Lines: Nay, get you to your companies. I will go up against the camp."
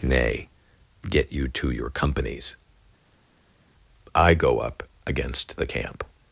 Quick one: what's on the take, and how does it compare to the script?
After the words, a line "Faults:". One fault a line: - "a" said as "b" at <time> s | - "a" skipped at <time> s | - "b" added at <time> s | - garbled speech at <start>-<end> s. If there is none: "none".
Nay, get you to your companies. I go up against the camp."
Faults:
- "will" skipped at 4.3 s